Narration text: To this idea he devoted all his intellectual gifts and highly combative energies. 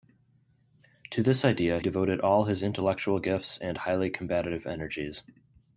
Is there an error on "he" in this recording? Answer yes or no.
yes